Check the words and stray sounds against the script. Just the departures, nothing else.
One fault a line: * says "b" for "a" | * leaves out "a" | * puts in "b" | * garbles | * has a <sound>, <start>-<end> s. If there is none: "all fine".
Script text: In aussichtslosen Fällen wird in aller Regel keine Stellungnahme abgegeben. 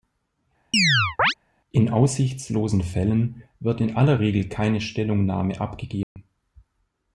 * has a chirp, 0.7-1.3 s
* has a dropout, 6.0-6.2 s